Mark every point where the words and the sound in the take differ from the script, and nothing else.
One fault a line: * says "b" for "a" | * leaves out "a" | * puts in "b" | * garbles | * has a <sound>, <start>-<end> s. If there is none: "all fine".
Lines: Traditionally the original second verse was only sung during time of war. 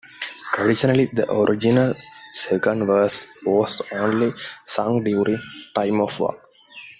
all fine